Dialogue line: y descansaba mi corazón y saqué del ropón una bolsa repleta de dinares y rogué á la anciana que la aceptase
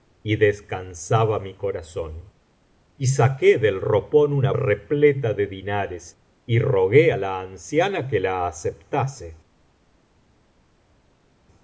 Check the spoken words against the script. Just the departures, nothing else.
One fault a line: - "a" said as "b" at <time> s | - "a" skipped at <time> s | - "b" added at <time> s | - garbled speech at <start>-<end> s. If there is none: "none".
- "bolsa" skipped at 4.5 s